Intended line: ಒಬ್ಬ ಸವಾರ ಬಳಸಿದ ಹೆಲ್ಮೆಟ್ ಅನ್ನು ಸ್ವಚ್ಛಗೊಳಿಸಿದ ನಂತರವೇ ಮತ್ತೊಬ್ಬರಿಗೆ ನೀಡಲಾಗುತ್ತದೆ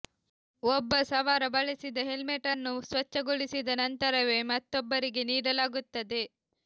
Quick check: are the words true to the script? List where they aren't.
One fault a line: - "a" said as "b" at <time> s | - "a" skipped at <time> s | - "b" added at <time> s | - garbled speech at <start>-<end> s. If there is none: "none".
none